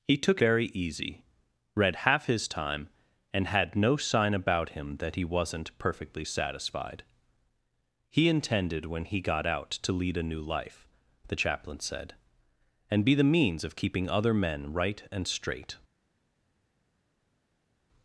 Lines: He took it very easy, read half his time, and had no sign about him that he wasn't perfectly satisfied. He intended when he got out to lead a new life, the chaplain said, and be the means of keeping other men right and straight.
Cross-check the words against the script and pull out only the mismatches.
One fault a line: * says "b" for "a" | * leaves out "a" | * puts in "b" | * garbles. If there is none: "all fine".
* leaves out "it"